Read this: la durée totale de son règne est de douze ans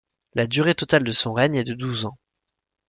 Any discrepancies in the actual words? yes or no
no